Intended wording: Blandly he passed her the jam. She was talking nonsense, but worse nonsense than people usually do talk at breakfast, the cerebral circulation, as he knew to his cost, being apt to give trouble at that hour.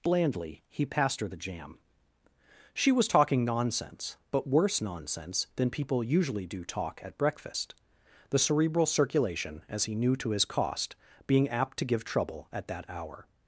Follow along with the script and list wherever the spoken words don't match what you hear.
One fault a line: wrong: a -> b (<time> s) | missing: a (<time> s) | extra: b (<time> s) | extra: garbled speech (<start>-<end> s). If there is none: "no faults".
no faults